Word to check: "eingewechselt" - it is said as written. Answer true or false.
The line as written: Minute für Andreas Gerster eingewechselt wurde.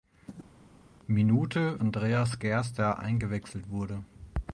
true